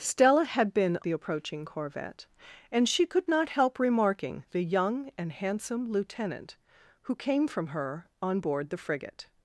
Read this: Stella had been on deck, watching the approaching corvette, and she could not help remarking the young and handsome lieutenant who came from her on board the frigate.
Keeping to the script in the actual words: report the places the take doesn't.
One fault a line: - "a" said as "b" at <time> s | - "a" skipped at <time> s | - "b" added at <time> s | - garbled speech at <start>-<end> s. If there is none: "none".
- "on deck watching" skipped at 1.0 s